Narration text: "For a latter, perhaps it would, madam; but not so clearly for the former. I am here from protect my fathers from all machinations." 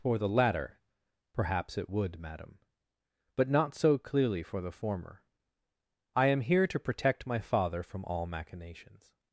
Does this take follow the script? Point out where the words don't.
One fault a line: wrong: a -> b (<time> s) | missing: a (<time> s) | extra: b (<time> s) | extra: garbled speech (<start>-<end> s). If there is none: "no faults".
wrong: a -> the (0.2 s)
wrong: from -> to (6.7 s)
wrong: fathers -> father (7.4 s)